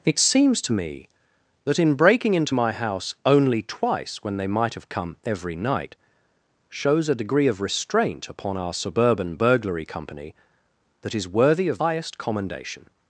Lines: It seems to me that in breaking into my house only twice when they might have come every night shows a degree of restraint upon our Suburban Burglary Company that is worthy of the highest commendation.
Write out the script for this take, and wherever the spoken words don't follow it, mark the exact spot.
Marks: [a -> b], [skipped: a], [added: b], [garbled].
It seems to me that in breaking into my house only twice when they might have come every night shows a degree of restraint upon our Suburban Burglary Company that is worthy of [skipped: the] highest commendation.